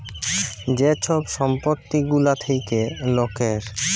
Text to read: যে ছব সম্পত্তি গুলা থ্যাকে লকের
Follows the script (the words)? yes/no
yes